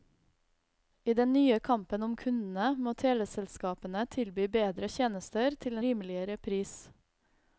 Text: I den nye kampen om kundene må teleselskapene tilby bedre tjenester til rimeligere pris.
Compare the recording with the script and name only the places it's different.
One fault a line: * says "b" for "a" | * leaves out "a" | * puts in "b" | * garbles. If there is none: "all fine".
all fine